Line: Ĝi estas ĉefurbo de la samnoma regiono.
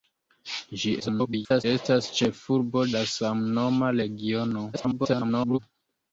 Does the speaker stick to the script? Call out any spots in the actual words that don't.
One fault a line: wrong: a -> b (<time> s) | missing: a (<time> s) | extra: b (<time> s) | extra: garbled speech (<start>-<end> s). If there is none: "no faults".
extra: garbled speech (1.0-1.6 s)
missing: de (2.9 s)
extra: garbled speech (4.7-5.6 s)